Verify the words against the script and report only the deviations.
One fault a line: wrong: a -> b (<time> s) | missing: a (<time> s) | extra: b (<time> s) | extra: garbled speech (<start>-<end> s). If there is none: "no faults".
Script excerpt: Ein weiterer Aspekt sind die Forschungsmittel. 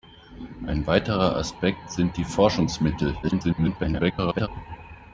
extra: garbled speech (3.2-4.5 s)